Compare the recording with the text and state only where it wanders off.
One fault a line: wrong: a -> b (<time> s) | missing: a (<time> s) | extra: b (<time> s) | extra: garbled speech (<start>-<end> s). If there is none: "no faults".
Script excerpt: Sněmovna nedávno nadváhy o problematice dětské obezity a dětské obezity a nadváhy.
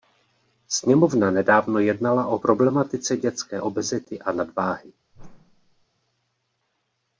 wrong: nadváhy -> jednala (1.8 s)
missing: dětské obezity a (4.3 s)